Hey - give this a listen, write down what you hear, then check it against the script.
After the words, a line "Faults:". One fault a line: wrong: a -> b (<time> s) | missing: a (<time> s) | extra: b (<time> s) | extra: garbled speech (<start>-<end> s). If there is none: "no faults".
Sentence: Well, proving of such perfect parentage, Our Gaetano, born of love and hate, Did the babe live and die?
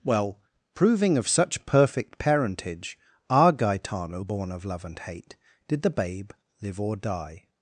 Well, proving of such perfect parentage, Our Gaetano, born of love and hate, Did the babe live or die?
Faults:
wrong: and -> or (6.8 s)